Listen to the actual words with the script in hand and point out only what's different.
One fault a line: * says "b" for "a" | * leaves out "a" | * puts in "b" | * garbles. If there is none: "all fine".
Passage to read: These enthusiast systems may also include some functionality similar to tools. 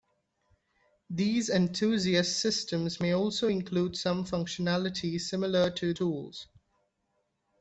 all fine